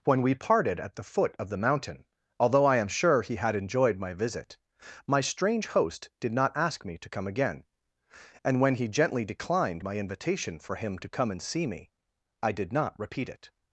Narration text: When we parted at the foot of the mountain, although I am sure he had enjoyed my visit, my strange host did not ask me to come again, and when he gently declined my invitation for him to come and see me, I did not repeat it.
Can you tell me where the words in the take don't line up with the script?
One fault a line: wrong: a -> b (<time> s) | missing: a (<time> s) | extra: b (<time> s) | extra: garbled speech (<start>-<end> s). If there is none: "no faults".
no faults